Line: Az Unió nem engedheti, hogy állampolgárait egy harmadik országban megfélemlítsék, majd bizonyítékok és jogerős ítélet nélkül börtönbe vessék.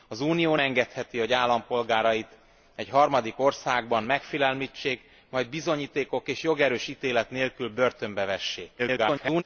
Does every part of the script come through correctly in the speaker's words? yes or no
no